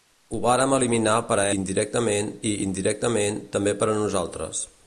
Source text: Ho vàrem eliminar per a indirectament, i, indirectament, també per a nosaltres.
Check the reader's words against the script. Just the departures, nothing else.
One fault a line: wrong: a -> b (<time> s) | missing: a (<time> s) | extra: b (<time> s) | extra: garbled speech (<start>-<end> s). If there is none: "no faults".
no faults